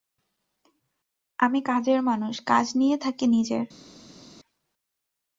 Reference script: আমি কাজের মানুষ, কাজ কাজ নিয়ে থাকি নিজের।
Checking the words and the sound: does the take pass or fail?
fail